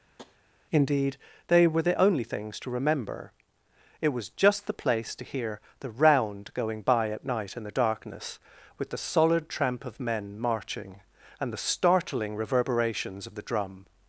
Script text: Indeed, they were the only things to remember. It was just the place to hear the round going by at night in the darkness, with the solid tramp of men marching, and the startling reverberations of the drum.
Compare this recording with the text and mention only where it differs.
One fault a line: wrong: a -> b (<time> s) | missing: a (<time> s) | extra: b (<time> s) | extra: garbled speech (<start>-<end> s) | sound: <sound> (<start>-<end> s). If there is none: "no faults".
sound: tap (0.2-0.4 s)